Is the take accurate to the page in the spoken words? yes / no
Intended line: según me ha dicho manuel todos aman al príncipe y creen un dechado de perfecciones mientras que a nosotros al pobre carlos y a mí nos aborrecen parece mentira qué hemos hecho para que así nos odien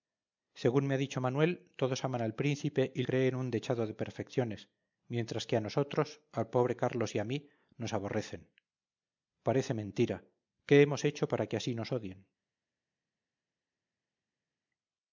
yes